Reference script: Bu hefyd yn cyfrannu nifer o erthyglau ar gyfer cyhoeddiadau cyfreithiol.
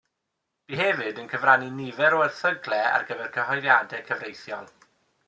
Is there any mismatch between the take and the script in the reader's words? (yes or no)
no